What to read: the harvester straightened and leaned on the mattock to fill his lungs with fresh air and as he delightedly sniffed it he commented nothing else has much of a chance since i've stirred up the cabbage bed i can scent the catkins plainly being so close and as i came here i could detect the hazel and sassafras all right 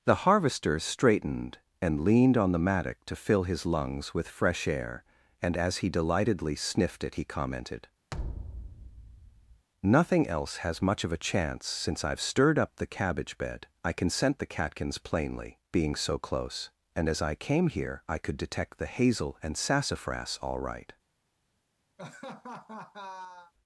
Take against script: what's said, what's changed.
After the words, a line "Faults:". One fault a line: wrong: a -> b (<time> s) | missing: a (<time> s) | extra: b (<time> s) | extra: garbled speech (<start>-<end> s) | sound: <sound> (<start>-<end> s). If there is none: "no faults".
the harvester straightened and leaned on the mattock to fill his lungs with fresh air and as he delightedly sniffed it he commented nothing else has much of a chance since i've stirred up the cabbage bed i can scent the catkins plainly being so close and as i came here i could detect the hazel and sassafras all right
Faults:
sound: thud (8.1-9.7 s)
sound: laugh (22.0-23.5 s)